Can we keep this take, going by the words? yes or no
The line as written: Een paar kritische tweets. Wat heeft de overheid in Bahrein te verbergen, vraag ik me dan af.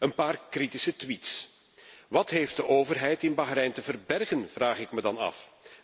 yes